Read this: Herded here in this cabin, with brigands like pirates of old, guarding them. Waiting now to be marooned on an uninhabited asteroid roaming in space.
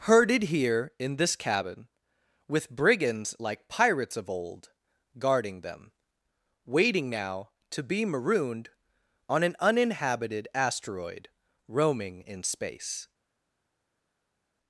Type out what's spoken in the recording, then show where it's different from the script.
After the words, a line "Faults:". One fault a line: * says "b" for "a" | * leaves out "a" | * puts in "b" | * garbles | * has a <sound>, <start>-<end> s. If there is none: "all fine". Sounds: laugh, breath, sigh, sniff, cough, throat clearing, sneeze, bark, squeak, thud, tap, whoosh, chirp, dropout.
Herded here in this cabin, with brigands like pirates of old, guarding them. Waiting now to be marooned on an uninhabited asteroid roaming in space.
Faults:
all fine